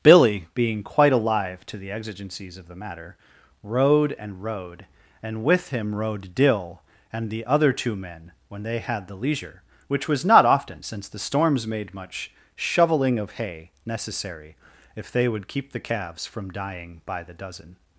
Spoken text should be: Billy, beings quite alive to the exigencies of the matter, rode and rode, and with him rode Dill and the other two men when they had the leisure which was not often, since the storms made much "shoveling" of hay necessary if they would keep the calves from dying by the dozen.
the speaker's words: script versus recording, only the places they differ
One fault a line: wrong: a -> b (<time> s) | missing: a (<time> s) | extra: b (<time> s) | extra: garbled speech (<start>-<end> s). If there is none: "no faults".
wrong: beings -> being (0.6 s)